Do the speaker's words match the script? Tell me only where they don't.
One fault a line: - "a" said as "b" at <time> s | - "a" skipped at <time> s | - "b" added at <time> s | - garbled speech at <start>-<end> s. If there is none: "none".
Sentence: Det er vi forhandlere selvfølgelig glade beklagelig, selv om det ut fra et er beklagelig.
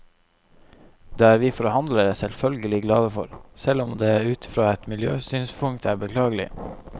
- "beklagelig" said as "for" at 3.2 s
- "miljøsynspunkt" added at 5.0 s